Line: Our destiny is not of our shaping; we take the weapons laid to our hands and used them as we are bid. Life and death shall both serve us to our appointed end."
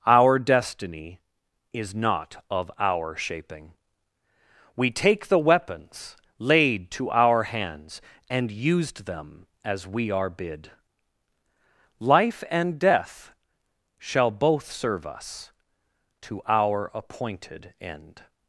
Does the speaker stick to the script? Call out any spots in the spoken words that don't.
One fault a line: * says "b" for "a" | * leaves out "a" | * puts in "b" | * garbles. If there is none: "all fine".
all fine